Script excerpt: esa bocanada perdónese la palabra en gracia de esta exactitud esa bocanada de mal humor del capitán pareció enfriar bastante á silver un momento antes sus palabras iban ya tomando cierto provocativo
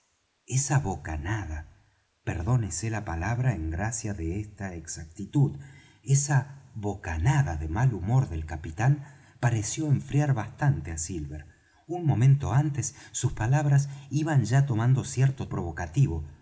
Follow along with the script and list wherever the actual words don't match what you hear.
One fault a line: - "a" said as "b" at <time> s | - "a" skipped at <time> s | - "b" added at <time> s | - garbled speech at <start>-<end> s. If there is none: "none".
none